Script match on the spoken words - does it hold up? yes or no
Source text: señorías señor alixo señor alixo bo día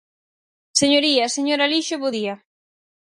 no